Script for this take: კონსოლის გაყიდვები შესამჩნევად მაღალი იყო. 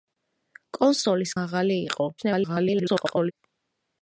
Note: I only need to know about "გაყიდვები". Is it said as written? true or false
false